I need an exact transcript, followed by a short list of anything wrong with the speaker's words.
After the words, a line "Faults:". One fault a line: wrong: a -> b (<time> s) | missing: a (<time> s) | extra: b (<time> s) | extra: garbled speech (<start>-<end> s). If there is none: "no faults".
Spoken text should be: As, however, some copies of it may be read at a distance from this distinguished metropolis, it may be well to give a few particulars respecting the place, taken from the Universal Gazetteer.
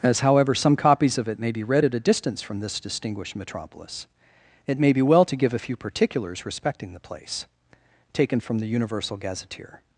As, however, some copies of it may be read at a distance from this distinguished metropolis, it may be well to give a few particulars respecting the place, taken from the Universal Gazetteer.
Faults:
no faults